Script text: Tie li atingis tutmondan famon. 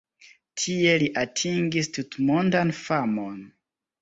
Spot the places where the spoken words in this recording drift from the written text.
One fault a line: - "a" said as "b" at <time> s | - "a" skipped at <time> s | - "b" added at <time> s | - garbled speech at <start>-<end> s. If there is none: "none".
none